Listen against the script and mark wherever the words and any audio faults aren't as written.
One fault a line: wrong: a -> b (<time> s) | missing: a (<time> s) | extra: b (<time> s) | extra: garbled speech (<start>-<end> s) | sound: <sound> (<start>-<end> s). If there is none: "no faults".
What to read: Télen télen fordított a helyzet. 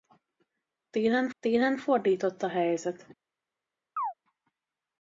sound: chirp (4.0-4.1 s)